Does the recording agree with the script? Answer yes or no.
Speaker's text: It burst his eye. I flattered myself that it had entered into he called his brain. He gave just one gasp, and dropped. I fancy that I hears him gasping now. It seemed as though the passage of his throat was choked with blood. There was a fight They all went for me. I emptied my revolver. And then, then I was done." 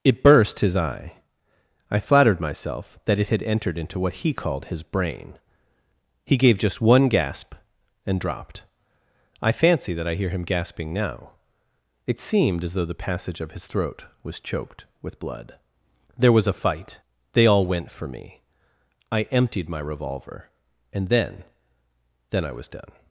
no